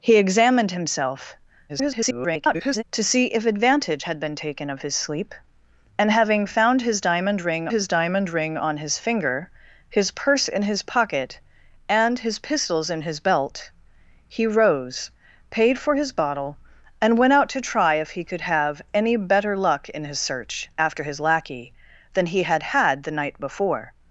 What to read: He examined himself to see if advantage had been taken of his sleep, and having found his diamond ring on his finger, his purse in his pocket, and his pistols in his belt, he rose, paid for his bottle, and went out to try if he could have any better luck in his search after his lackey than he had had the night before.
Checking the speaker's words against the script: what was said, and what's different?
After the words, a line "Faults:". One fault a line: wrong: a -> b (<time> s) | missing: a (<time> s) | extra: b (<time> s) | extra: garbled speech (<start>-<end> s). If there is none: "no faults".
He examined himself [garbled] to see if advantage had been taken of his sleep, and having found his diamond ring his diamond ring on his finger, his purse in his pocket, and his pistols in his belt, he rose, paid for his bottle, and went out to try if he could have any better luck in his search after his lackey than he had had the night before.
Faults:
extra: garbled speech (1.7-2.8 s)
extra: his diamond ring (7.7 s)